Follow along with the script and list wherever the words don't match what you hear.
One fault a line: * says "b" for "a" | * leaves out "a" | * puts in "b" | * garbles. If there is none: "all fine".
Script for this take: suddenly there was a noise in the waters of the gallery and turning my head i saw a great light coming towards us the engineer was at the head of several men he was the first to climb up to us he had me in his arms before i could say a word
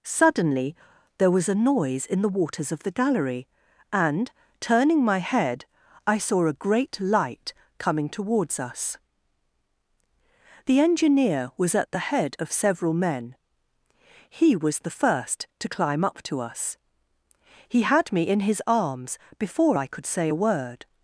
all fine